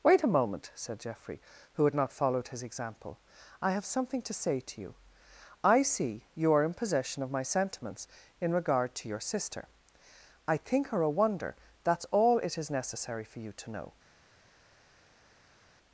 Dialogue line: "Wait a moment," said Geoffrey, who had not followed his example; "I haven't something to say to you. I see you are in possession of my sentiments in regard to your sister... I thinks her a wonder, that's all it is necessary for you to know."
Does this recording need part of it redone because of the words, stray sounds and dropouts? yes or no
yes